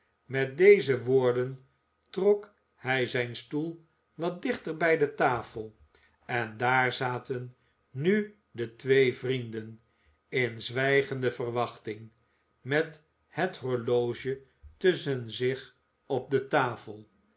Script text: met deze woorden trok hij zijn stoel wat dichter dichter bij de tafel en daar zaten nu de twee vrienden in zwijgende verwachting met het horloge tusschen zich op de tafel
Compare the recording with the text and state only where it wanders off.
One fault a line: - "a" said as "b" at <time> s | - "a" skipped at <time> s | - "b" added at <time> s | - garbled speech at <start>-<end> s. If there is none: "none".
- "dichter" skipped at 4.8 s